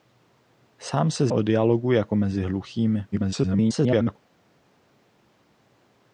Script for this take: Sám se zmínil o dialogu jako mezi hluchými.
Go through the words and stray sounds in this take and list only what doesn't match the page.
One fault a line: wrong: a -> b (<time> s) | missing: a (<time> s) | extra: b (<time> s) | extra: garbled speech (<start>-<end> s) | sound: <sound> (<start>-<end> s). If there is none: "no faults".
missing: zmínil (1.3 s)
extra: garbled speech (3.1-4.2 s)